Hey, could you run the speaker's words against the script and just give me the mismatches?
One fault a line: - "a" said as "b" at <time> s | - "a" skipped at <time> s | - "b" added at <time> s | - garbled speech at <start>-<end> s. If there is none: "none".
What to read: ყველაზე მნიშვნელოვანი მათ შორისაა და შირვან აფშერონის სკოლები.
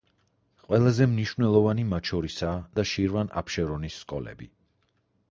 none